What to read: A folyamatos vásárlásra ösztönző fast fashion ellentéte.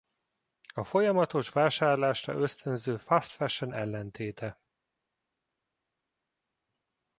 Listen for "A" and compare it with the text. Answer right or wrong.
right